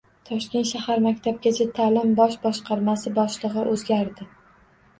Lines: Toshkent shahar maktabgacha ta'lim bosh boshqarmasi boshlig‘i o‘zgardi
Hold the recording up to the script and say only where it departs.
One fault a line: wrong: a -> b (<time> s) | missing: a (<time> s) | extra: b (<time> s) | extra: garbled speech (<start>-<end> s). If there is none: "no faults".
no faults